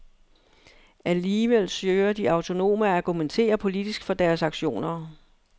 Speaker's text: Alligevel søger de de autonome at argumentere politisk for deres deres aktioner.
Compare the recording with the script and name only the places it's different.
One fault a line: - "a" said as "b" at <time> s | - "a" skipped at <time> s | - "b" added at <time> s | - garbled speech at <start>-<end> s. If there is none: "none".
- "de" skipped at 2.3 s
- "deres" skipped at 4.4 s